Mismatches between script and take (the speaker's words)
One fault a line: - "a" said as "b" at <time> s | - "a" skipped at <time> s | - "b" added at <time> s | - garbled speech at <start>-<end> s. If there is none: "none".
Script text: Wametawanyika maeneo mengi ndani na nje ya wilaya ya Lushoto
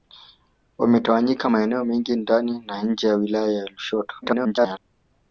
- garbled speech at 4.2-4.8 s